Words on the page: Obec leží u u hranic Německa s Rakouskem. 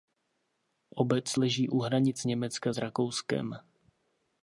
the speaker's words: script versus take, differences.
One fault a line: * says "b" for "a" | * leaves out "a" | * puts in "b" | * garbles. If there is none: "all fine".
* leaves out "u"